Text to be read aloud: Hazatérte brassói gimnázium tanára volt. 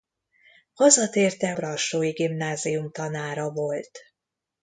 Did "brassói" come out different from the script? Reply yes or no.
no